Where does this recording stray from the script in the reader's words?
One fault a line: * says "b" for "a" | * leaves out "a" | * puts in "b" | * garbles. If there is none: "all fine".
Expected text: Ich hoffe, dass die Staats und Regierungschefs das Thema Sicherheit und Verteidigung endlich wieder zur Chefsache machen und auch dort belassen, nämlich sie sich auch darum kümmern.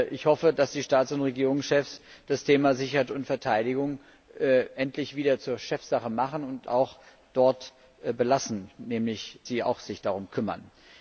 all fine